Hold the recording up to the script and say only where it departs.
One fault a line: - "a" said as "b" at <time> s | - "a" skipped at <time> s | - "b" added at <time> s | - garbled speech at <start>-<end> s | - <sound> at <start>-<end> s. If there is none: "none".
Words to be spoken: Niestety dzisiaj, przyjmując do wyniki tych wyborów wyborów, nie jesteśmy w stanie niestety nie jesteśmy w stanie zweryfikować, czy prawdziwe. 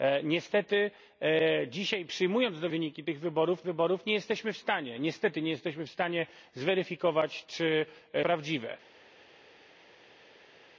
none